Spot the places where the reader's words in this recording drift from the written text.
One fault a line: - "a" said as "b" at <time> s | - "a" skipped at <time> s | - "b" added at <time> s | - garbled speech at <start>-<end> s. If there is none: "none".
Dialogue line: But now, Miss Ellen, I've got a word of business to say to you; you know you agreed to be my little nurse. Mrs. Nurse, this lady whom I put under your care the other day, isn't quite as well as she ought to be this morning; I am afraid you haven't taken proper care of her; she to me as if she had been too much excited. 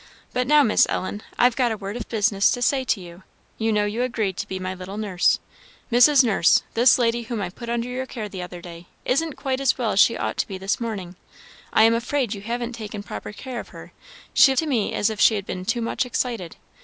none